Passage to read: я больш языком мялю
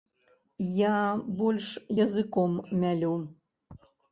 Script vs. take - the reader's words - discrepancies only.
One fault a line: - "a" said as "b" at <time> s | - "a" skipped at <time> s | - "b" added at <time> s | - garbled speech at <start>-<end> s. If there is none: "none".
none